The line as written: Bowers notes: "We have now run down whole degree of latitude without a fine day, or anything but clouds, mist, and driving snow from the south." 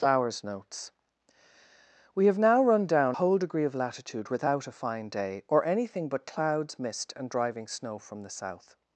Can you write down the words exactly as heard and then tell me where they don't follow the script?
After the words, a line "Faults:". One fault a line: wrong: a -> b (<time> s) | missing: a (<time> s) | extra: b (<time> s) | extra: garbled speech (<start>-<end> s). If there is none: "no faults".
Bowers notes: "We have now run down whole degree of latitude without a fine day, or anything but clouds, mist, and driving snow from the south."
Faults:
no faults